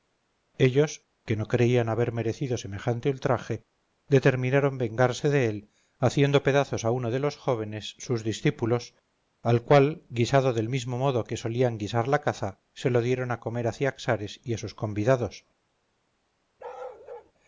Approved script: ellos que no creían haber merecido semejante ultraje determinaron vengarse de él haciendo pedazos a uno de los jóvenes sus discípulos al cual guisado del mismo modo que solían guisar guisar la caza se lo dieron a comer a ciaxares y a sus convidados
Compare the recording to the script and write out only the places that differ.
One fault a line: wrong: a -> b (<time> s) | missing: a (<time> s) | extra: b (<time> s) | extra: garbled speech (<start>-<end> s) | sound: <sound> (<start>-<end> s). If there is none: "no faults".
missing: guisar (12.1 s)
sound: bark (16.6-17.3 s)